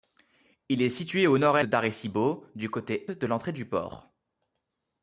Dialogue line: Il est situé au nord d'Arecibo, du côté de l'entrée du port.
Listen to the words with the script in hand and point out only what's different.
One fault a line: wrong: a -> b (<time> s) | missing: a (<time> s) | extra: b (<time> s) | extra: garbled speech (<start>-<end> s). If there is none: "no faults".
no faults